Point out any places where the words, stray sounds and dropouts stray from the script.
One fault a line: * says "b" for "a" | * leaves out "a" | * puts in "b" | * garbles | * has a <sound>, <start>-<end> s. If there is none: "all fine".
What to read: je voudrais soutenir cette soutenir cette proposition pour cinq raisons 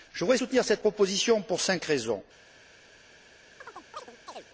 * leaves out "soutenir cette"
* has a chirp, 3.6-4.5 s